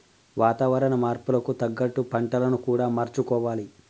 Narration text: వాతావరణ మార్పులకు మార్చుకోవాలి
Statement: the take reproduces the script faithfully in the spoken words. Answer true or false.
false